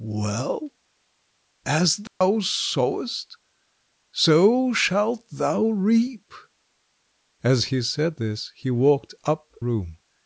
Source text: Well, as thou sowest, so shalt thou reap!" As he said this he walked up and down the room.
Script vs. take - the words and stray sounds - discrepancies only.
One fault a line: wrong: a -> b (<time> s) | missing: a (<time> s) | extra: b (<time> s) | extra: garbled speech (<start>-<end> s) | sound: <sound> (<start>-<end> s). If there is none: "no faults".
sound: dropout (2.1-2.2 s)
missing: and down the (9.5 s)